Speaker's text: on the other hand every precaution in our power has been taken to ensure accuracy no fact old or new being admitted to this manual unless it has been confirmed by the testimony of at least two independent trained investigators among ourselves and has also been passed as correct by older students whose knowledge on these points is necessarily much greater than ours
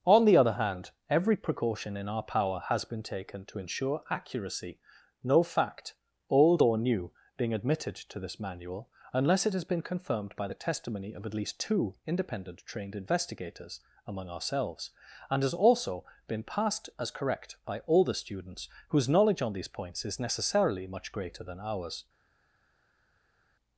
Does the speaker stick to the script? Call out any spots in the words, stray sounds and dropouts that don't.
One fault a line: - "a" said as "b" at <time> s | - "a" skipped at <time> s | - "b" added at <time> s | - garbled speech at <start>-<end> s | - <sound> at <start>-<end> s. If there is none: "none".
none